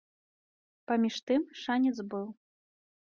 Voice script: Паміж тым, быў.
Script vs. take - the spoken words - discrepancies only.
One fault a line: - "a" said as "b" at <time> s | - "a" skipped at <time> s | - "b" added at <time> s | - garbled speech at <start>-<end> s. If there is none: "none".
- "шанец" added at 1.6 s